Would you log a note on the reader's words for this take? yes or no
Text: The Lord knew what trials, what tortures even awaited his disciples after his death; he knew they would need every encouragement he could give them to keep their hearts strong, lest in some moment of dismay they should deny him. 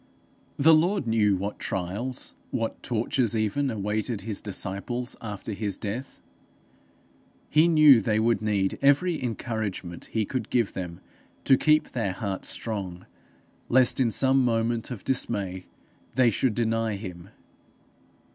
no